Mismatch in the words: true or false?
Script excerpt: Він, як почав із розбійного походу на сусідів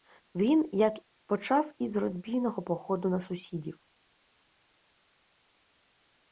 false